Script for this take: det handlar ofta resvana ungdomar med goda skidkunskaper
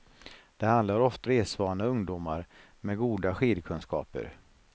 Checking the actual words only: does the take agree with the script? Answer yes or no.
yes